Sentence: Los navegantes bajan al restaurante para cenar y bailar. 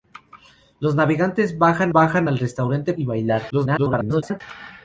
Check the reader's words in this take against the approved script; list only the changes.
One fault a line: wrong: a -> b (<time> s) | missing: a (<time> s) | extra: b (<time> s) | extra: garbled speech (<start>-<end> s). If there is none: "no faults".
extra: bajan (1.9 s)
missing: para cenar (2.9 s)
extra: garbled speech (3.5-4.4 s)